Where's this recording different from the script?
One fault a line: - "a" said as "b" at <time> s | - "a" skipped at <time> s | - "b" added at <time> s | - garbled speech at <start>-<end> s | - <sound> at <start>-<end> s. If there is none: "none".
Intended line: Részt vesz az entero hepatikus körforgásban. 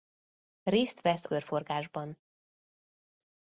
- "az entero hepatikus" skipped at 1.2 s